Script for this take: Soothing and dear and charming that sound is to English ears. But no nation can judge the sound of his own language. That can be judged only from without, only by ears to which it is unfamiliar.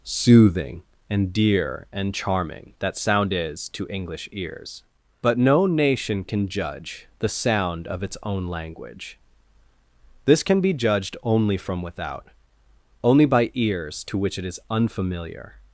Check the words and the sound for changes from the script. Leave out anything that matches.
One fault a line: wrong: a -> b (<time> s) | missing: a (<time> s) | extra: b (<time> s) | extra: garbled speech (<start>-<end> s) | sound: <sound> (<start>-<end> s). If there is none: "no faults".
wrong: his -> its (8.0 s)
wrong: That -> This (10.2 s)